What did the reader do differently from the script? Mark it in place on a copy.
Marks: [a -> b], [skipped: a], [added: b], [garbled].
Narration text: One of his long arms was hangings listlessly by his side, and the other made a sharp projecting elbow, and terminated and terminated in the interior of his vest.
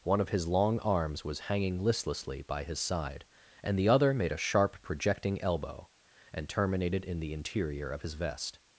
One of his long arms was [hangings -> hanging] listlessly by his side, and the other made a sharp projecting elbow, and terminated [skipped: and terminated] in the interior of his vest.